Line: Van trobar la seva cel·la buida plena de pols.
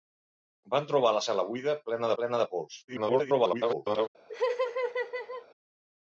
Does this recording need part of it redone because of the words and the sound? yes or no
yes